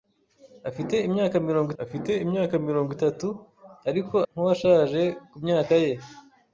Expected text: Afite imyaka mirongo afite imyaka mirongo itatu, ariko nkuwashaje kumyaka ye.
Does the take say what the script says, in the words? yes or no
yes